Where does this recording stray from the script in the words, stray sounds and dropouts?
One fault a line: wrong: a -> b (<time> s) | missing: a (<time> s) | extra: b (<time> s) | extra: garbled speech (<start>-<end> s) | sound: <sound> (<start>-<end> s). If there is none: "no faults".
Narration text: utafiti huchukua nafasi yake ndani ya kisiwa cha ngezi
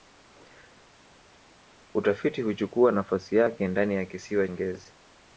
missing: cha (4.5 s)